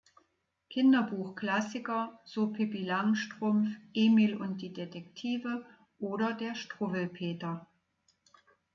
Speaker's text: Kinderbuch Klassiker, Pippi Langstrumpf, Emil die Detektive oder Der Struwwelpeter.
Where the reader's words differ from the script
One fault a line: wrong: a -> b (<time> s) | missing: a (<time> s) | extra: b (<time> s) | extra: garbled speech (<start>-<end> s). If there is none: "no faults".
extra: so (2.2 s)
extra: und (4.3 s)